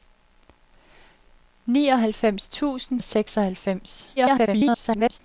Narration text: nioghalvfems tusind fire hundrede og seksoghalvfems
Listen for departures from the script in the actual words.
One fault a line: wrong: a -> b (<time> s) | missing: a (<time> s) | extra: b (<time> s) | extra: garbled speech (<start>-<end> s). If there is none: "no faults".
missing: fire hundrede (3.0 s)
extra: garbled speech (4.2-5.2 s)